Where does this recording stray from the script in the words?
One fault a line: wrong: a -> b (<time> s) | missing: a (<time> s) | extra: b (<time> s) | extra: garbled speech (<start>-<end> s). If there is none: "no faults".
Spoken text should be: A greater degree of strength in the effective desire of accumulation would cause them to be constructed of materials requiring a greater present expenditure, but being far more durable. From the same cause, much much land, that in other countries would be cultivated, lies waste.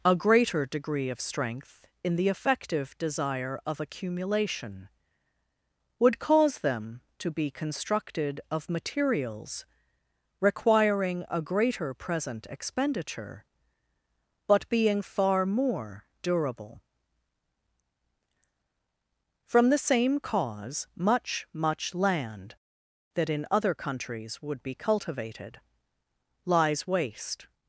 no faults